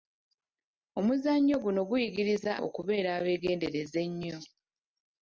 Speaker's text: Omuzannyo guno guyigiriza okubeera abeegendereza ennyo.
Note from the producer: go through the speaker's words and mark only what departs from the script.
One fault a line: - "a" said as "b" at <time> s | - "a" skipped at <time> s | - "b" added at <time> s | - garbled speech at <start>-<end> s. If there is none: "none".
none